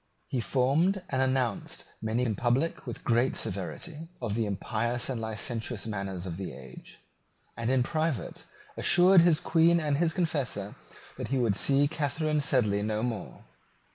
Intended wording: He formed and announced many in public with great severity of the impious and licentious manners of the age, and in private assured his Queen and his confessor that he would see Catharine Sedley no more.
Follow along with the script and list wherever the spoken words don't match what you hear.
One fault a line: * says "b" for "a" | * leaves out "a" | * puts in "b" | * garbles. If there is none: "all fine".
all fine